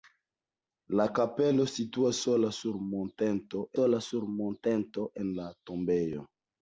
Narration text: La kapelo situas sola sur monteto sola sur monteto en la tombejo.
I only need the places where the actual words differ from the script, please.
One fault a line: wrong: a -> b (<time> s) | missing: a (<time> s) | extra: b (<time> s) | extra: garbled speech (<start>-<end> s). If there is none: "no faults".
no faults